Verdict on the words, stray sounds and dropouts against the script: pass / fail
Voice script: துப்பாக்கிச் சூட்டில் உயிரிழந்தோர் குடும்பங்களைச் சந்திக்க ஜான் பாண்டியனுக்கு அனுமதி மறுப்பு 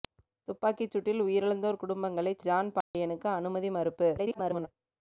fail